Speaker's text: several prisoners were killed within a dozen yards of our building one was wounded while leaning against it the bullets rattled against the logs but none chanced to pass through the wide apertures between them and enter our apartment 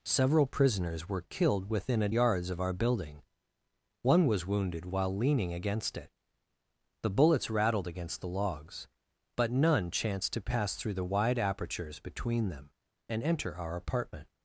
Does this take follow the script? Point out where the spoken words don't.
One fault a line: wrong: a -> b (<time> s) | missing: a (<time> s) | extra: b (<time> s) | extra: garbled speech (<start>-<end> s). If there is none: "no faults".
missing: dozen (2.1 s)